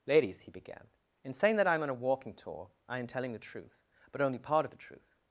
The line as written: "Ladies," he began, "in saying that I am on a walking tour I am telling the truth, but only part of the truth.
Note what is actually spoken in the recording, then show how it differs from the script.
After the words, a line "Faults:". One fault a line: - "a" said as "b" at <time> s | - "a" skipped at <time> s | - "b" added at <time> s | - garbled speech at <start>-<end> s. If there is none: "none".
"Ladies," he began, "in saying that I am on a walking tour I am telling the truth, but only part of the truth.
Faults:
none